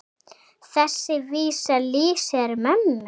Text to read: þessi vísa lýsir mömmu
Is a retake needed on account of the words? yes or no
no